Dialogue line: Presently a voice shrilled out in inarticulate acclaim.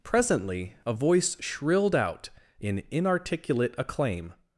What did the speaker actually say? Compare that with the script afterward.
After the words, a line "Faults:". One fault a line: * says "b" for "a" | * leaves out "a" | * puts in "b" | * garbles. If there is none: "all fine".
Presently a voice shrilled out in inarticulate acclaim.
Faults:
all fine